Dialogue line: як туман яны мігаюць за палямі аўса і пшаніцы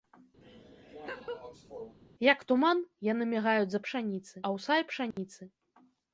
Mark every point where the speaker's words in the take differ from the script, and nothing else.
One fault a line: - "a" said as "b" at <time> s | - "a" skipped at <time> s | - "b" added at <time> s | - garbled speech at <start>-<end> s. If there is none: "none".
- "палямі" said as "пшаніцы" at 3.9 s